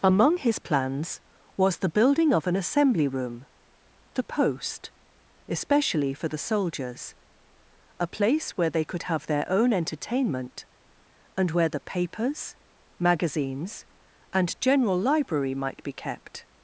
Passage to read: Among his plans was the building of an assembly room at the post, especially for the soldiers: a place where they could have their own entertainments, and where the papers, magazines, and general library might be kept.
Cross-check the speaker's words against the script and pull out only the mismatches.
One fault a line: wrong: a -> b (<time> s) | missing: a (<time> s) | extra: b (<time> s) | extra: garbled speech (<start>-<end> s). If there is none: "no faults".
missing: at (3.5 s)
wrong: entertainments -> entertainment (9.7 s)